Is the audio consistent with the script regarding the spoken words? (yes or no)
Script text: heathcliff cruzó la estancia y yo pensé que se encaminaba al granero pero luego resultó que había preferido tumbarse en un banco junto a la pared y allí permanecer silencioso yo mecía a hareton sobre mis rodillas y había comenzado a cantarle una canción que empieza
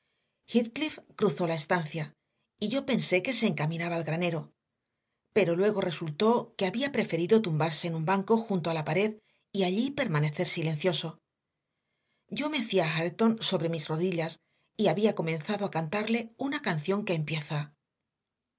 yes